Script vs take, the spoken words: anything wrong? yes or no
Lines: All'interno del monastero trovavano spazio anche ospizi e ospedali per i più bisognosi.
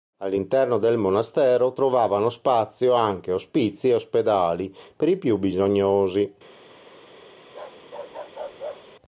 no